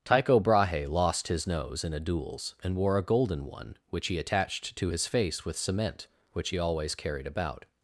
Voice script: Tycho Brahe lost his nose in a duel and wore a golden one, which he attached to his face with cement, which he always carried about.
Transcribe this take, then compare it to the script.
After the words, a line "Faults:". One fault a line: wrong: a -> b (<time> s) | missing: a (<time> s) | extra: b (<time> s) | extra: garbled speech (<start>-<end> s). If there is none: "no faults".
Tycho Brahe lost his nose in a duels and wore a golden one, which he attached to his face with cement, which he always carried about.
Faults:
wrong: duel -> duels (2.0 s)